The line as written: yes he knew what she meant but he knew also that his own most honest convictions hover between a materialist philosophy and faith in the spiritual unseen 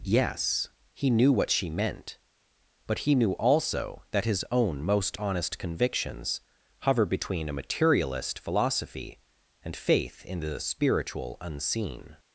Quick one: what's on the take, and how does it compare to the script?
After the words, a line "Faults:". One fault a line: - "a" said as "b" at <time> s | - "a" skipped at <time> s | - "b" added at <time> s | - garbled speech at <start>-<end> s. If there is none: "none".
yes he knew what she meant but he knew also that his own most honest convictions hover between a materialist philosophy and faith in the spiritual unseen
Faults:
none